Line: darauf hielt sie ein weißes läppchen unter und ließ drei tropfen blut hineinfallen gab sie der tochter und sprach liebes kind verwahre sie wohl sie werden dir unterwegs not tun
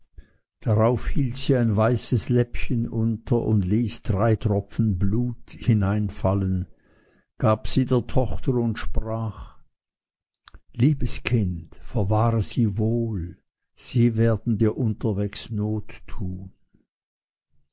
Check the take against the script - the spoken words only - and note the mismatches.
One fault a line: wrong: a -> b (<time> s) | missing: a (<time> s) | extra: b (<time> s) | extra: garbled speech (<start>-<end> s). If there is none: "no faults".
no faults